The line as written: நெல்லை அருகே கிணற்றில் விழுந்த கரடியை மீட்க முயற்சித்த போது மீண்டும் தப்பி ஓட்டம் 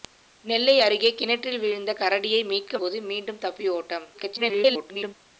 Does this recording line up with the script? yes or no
no